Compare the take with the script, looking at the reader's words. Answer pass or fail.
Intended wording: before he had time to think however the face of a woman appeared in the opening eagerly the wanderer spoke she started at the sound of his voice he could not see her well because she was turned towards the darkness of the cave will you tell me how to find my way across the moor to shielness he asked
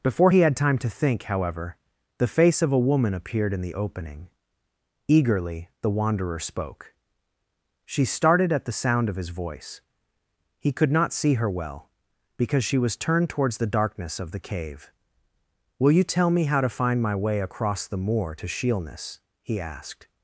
pass